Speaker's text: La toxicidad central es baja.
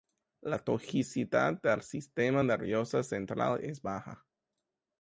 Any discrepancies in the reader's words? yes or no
yes